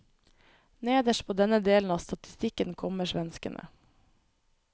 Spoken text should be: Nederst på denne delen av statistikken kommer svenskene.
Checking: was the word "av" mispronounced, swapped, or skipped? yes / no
no